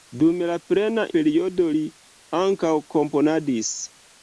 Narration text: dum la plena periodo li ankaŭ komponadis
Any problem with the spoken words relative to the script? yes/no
no